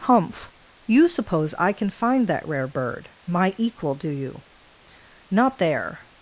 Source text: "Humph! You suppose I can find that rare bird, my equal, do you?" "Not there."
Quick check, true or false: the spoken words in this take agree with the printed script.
true